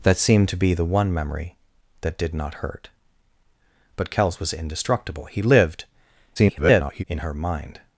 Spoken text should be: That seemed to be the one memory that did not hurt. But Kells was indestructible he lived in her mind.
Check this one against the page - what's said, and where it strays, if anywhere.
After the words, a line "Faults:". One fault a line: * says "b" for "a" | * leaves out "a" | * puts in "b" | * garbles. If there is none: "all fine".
That seemed to be the one memory that did not hurt. But Kells was indestructible he lived [garbled] in her mind.
Faults:
* garbles